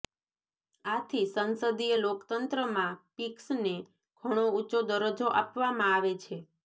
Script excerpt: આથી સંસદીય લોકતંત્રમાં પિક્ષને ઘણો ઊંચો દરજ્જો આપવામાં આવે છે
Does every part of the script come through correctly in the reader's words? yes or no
yes